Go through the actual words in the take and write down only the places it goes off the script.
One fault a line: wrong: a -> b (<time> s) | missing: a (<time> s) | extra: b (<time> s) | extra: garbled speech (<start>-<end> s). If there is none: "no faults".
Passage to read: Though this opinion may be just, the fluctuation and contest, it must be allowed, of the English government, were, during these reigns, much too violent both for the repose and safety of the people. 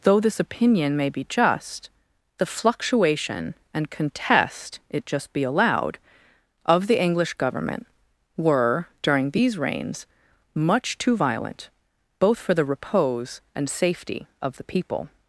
wrong: must -> just (5.1 s)